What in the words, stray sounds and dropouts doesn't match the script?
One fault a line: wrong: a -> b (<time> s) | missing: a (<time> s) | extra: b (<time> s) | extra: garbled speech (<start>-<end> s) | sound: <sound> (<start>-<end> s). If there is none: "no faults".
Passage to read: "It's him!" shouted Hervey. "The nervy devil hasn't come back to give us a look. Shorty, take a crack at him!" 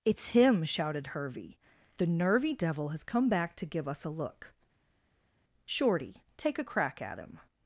wrong: hasn't -> has (2.9 s)